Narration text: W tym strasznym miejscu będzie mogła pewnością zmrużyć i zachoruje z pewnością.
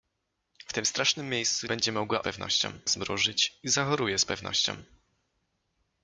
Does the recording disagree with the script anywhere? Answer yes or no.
no